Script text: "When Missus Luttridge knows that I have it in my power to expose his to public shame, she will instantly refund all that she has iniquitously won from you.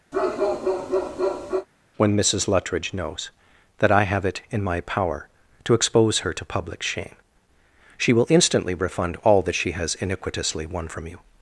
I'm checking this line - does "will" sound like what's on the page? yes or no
yes